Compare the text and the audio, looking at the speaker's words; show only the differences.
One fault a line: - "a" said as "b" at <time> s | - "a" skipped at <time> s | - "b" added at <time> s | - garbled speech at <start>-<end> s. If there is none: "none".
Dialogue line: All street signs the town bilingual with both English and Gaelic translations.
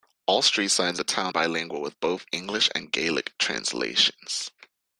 none